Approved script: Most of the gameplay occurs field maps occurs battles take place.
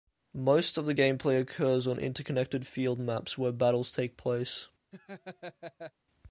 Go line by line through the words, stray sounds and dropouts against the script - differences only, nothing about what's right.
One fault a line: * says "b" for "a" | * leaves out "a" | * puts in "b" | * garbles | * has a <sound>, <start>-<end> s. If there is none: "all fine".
* puts in "on interconnected"
* says "where" for "occurs"
* has a laugh, 4.9-5.9 s